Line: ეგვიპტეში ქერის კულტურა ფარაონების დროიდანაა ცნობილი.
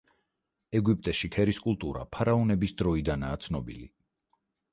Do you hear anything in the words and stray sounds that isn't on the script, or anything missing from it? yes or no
no